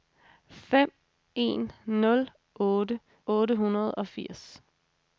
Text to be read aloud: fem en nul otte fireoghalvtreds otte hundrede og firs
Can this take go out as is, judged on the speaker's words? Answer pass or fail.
fail